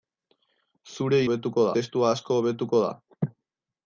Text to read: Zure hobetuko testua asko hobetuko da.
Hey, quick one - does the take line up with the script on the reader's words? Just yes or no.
yes